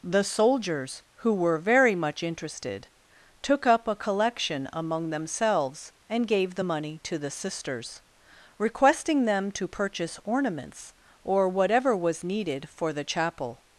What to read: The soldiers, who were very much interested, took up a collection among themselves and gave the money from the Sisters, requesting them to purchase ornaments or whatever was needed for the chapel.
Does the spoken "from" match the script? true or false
false